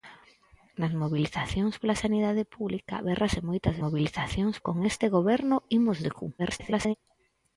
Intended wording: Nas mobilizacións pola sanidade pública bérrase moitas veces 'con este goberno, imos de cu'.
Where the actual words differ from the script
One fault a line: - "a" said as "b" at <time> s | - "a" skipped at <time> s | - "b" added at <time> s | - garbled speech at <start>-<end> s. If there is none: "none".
- "veces" said as "mobilizacións" at 3.8 s
- garbled speech at 6.4-6.9 s